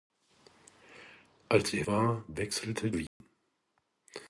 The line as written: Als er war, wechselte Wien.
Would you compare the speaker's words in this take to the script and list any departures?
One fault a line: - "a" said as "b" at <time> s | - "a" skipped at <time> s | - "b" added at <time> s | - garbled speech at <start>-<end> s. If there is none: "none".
none